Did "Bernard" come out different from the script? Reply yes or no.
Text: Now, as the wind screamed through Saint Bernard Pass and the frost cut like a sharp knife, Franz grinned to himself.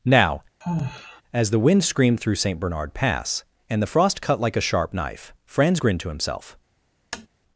no